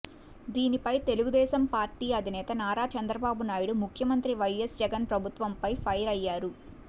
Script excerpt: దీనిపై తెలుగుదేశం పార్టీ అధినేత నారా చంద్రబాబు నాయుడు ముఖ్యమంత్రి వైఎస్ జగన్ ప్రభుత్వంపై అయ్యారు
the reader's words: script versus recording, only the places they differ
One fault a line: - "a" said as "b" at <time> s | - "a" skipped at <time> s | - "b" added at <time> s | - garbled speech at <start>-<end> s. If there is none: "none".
- "ఫైర్" added at 5.8 s